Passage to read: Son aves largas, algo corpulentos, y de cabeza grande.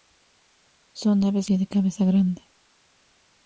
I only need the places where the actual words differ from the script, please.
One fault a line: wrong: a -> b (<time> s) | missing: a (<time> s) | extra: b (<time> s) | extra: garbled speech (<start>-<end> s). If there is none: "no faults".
missing: largas algo corpulentos (1.5 s)